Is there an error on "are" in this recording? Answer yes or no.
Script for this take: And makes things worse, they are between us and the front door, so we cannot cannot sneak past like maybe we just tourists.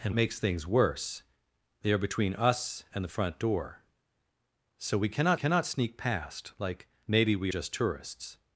no